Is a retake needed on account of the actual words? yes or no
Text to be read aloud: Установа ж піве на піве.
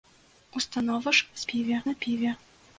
no